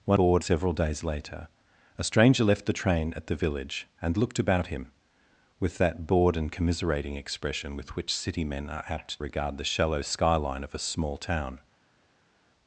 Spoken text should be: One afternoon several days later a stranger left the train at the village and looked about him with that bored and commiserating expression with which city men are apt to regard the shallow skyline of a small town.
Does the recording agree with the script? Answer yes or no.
no